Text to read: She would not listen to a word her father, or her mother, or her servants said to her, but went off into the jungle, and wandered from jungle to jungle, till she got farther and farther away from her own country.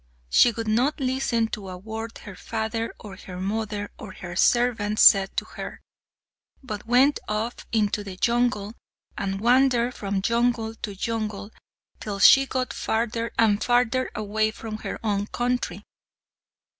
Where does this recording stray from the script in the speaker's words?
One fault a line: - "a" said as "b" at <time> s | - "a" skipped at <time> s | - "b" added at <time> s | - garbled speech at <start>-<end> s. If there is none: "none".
none